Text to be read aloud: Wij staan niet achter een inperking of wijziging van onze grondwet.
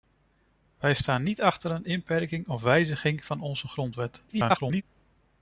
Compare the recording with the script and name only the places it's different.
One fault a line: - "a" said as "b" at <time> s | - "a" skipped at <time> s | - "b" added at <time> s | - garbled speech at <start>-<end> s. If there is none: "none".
- garbled speech at 4.3-4.8 s